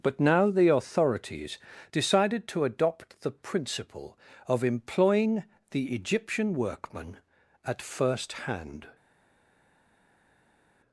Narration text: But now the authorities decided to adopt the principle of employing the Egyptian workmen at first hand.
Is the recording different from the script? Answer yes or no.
no